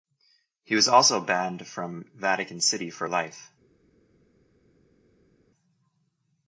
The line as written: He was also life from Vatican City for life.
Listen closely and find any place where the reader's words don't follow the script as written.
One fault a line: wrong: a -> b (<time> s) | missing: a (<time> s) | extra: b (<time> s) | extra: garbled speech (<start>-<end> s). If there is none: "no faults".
wrong: life -> banned (1.2 s)